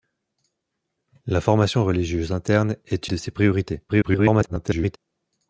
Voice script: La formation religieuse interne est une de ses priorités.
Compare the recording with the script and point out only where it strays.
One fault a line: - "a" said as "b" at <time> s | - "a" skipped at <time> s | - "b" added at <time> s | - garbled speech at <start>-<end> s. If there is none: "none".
- "une" skipped at 3.1 s
- garbled speech at 3.9-5.0 s